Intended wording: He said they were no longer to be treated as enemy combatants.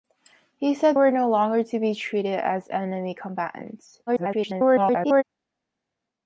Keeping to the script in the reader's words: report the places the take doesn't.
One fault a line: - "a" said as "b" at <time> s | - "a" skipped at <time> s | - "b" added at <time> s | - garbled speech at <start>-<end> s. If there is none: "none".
- "they" skipped at 1.0 s
- garbled speech at 4.1-5.2 s